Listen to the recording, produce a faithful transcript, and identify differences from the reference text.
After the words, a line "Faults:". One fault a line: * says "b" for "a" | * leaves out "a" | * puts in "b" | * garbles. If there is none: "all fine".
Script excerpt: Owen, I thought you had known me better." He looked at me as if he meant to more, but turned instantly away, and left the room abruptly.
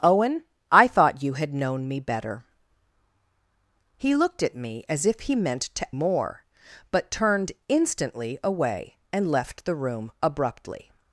Owen, I thought you had known me better." He looked at me as if he meant to more, but turned instantly away, and left the room abruptly.
Faults:
all fine